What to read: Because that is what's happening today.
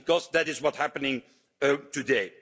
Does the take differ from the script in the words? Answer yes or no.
no